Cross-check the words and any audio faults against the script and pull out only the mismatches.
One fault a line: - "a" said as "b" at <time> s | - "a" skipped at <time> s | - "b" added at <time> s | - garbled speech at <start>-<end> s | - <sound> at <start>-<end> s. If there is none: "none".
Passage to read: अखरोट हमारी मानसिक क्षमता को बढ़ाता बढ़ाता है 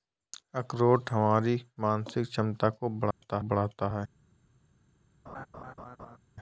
- dropout at 3.1-3.2 s
- laugh at 5.3-6.2 s